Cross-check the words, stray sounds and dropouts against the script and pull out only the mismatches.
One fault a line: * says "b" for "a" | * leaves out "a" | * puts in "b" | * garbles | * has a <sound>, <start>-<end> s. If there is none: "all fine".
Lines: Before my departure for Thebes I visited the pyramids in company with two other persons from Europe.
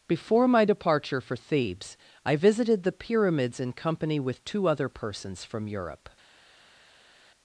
all fine